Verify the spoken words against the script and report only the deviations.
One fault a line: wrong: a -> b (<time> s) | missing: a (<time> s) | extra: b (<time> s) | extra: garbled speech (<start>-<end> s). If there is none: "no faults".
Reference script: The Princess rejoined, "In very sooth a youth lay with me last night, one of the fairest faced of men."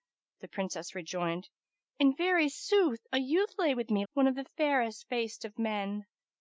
missing: last night (4.1 s)